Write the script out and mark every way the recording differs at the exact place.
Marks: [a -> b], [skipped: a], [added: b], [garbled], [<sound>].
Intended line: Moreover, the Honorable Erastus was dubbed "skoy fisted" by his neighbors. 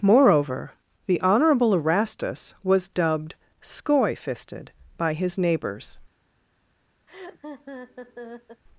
Moreover, the Honorable Erastus was dubbed "skoy fisted" by his neighbors. [laugh]